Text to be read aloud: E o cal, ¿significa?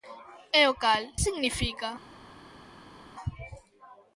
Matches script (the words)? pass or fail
pass